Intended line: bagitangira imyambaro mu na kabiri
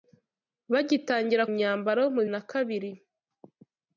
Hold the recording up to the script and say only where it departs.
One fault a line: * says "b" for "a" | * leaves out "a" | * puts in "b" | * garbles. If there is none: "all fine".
all fine